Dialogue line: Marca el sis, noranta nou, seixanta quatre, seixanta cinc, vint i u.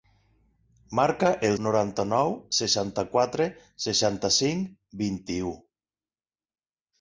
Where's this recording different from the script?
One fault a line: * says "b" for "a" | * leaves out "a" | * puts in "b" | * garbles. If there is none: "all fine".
* leaves out "sis"